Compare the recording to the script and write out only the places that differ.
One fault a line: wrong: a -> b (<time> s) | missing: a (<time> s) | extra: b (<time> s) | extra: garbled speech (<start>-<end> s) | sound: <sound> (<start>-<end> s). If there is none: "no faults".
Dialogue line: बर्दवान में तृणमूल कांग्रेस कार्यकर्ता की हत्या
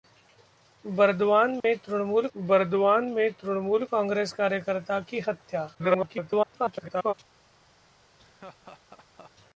sound: dropout (1.6-1.6 s)
extra: बर्दवान में तृणमूल (2.4 s)
extra: garbled speech (5.7-7.1 s)
sound: laugh (8.2-9.3 s)